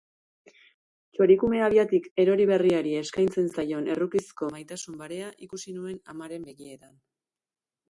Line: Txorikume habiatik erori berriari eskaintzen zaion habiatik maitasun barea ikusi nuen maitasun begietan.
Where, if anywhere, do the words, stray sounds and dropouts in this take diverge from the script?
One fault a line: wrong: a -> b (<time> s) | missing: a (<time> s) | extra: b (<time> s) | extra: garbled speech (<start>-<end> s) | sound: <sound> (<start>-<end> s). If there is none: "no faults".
wrong: habiatik -> errukizko (4.0 s)
wrong: maitasun -> amaren (6.2 s)